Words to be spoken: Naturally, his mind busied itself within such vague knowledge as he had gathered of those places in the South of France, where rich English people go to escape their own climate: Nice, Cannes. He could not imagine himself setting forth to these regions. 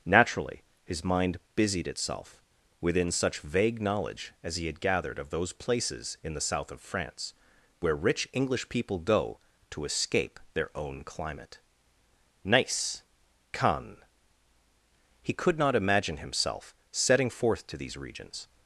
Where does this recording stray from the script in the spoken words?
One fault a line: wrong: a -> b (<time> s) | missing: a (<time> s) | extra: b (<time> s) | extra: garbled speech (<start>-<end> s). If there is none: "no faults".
no faults